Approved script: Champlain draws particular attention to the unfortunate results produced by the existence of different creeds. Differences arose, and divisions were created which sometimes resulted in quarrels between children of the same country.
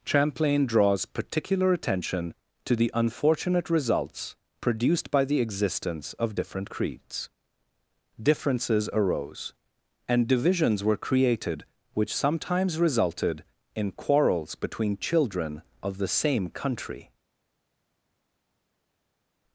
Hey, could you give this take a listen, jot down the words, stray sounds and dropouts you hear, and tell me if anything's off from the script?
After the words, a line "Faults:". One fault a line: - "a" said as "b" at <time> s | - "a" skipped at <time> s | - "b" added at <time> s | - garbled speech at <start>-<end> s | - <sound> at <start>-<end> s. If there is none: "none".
Champlain draws particular attention to the unfortunate results produced by the existence of different creeds. Differences arose, and divisions were created which sometimes resulted in quarrels between children of the same country.
Faults:
none